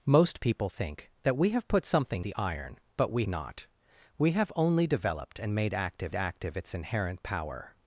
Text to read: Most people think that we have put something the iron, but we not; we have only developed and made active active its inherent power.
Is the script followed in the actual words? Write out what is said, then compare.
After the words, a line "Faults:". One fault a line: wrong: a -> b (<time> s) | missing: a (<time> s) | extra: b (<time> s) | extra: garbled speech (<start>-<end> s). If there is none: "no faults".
Most people think that we have put something the iron, but we not; we have only developed and made active active its inherent power.
Faults:
no faults